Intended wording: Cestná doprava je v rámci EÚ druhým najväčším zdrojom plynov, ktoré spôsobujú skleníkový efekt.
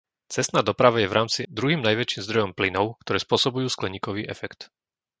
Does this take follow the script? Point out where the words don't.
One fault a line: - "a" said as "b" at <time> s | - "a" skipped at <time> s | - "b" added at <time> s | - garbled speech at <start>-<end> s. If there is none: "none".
- "EÚ" skipped at 1.4 s